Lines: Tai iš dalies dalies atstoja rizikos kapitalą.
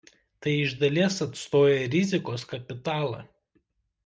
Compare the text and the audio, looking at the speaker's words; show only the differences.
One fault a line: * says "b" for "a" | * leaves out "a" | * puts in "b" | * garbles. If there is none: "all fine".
* leaves out "dalies"